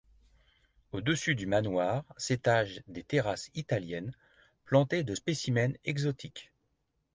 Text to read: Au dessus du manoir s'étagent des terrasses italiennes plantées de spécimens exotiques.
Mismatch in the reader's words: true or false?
false